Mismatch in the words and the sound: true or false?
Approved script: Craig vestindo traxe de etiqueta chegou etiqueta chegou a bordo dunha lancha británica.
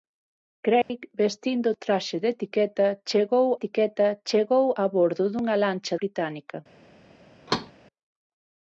true